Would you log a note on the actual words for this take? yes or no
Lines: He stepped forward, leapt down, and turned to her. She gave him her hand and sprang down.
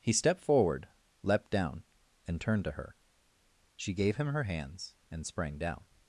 yes